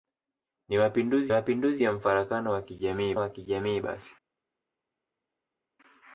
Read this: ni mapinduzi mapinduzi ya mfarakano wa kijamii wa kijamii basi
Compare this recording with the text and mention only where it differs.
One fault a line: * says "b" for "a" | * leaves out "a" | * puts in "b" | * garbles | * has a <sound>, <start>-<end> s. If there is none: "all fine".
all fine